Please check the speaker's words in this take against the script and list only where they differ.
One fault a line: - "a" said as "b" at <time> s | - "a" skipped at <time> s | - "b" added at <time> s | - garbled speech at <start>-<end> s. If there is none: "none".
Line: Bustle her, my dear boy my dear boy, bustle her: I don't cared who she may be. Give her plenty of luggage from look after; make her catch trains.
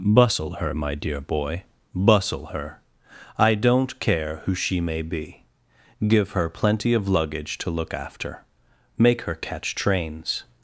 - "my dear boy" skipped at 1.6 s
- "cared" said as "care" at 4.0 s
- "from" said as "to" at 7.6 s